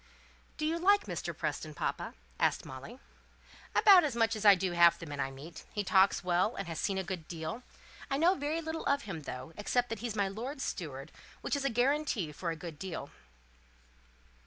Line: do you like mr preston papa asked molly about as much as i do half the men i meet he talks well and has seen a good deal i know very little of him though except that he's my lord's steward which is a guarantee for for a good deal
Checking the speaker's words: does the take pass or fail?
fail